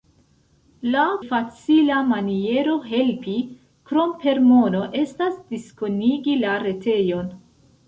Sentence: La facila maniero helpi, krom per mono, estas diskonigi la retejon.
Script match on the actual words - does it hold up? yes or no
yes